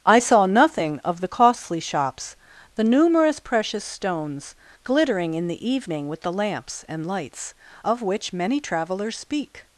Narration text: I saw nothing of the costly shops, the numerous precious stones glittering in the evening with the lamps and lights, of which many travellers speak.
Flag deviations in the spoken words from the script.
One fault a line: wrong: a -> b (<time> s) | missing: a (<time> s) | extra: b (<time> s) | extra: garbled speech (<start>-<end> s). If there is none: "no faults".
no faults